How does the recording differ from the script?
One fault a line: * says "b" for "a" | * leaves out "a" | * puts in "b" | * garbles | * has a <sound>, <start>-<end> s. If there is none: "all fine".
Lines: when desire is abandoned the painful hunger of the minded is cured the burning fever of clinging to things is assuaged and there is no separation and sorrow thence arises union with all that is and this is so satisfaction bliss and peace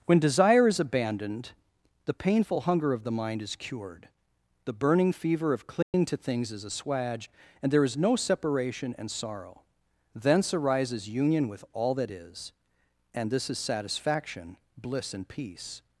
* says "mind" for "minded"
* has a dropout, 5.8-5.9 s
* leaves out "so"